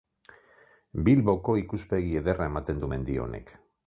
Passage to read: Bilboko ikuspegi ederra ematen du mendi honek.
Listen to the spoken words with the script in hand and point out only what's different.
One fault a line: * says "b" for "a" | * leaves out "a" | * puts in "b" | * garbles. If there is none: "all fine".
all fine